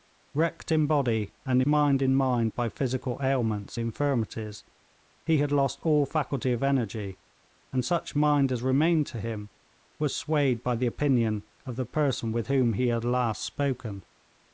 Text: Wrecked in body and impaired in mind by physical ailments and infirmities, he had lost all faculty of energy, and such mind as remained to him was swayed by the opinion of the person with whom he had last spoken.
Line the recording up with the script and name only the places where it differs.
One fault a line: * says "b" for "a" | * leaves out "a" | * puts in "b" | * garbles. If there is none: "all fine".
* says "mind" for "impaired"
* leaves out "and"